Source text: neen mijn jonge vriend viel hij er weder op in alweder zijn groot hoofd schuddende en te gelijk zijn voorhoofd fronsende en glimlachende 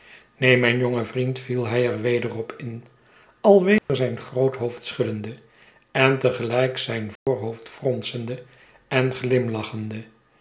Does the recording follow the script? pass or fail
pass